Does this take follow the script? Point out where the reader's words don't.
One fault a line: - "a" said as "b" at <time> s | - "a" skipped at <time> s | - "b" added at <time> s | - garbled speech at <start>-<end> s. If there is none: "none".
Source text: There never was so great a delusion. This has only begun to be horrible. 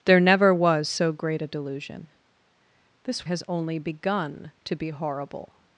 none